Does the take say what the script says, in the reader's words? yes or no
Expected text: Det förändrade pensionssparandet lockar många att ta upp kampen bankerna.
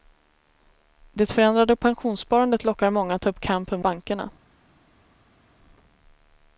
yes